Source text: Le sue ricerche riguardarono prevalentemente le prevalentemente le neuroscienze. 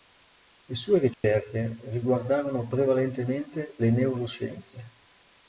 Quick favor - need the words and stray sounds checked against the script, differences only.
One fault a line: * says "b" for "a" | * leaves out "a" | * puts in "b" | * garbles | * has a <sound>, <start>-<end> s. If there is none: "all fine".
* has a dropout, 1.1-1.2 s
* leaves out "prevalentemente le"